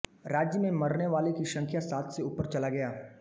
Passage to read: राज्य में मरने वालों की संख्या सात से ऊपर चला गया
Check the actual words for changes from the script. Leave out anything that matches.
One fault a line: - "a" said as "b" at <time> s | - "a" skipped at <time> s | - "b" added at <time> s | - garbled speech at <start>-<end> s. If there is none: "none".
none